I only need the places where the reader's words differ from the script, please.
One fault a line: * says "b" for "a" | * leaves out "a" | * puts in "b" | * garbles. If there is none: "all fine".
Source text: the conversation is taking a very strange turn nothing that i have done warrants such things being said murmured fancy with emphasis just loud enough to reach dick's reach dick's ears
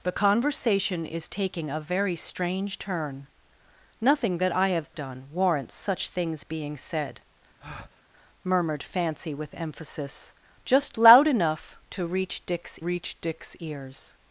all fine